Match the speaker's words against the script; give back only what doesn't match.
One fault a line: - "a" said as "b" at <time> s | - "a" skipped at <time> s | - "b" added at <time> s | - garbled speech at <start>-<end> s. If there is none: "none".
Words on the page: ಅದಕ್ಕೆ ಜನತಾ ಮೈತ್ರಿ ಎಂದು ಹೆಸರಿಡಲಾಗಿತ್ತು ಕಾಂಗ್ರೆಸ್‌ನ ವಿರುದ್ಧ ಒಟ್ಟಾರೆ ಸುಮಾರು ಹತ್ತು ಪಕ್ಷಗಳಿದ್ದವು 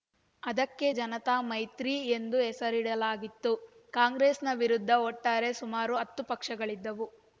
none